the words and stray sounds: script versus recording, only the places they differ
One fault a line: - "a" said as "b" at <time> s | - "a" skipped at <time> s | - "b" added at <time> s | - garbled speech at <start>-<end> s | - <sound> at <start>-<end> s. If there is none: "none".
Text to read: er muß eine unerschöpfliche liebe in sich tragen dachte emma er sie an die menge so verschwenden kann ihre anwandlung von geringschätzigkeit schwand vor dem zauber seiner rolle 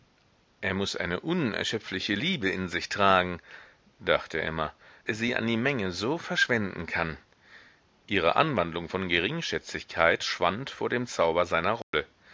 - dropout at 11.8-11.9 s